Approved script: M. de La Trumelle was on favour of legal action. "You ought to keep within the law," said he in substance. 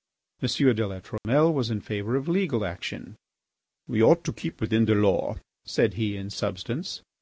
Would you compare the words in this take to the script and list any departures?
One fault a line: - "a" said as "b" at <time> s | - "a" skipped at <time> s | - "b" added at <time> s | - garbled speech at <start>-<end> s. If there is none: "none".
- "on" said as "in" at 1.7 s
- "You" said as "We" at 3.9 s